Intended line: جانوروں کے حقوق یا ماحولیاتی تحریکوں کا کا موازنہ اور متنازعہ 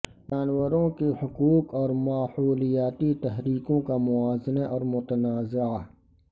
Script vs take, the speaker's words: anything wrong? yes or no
yes